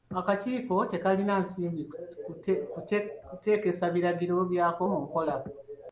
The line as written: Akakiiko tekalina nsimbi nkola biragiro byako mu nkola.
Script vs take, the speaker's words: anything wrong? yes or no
yes